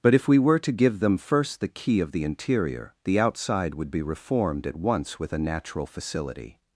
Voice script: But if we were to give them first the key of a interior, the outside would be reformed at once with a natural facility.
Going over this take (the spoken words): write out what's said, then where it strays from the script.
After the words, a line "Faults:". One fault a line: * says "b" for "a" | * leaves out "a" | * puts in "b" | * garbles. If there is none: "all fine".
But if we were to give them first the key of the interior, the outside would be reformed at once with a natural facility.
Faults:
* says "the" for "a"